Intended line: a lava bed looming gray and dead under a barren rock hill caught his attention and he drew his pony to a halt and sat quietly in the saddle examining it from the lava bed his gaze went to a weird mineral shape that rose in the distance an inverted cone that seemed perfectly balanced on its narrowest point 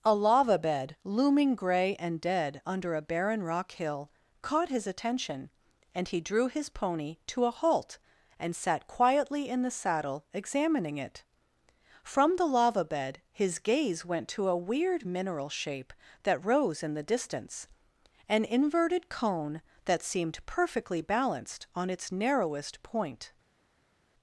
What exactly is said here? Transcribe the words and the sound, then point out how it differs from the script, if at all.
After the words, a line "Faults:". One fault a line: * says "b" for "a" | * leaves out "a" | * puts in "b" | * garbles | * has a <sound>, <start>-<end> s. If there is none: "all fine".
a lava bed looming gray and dead under a barren rock hill caught his attention and he drew his pony to a halt and sat quietly in the saddle examining it from the lava bed his gaze went to a weird mineral shape that rose in the distance an inverted cone that seemed perfectly balanced on its narrowest point
Faults:
all fine